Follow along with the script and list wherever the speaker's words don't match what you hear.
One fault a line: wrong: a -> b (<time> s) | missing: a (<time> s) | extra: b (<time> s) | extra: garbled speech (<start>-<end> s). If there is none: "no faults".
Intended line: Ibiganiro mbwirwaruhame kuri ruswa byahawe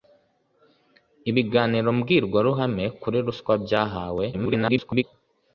extra: garbled speech (4.3-5.0 s)